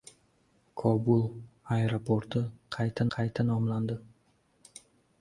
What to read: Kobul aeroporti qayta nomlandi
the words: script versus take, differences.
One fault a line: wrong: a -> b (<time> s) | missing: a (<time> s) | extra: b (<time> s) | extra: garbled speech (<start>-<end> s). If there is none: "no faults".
extra: qayta (3.2 s)